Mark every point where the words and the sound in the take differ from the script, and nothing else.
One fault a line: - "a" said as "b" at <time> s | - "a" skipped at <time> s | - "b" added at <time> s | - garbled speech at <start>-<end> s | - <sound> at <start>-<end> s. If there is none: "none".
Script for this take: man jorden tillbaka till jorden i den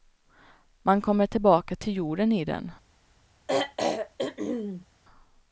- "jorden" said as "kommer" at 1.0 s
- throat clearing at 3.5-4.9 s